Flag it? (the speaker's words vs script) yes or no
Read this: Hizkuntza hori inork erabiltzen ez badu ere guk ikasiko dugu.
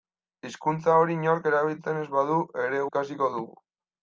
yes